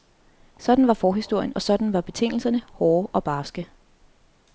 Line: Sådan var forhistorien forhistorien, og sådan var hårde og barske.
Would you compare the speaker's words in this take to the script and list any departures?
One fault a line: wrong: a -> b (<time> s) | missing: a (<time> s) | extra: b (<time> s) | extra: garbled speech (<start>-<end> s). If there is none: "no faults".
missing: forhistorien (1.5 s)
extra: betingelserne (2.0 s)